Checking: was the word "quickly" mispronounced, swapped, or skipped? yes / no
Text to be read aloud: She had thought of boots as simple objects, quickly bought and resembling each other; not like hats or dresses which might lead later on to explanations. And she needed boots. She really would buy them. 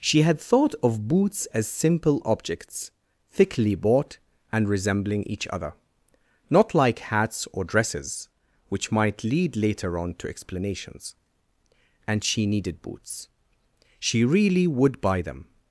yes